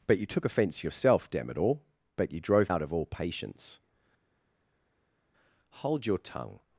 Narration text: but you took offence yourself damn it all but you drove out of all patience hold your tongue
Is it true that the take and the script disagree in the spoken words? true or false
false